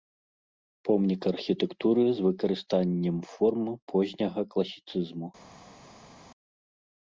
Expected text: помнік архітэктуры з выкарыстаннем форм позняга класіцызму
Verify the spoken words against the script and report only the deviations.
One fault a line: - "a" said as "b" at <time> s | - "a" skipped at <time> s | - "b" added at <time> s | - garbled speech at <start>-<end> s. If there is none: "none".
none